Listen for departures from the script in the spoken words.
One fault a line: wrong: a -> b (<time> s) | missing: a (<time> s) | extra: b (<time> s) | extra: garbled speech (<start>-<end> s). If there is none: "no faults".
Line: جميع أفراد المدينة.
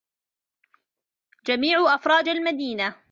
no faults